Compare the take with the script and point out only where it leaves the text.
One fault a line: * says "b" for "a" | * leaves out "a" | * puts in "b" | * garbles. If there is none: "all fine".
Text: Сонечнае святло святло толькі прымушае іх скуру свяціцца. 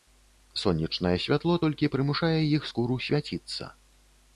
* leaves out "святло"